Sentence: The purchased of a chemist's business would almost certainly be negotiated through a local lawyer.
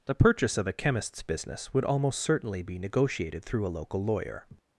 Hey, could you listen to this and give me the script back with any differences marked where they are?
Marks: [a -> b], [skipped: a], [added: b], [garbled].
The [purchased -> purchase] of a chemist's business would almost certainly be negotiated through a local lawyer.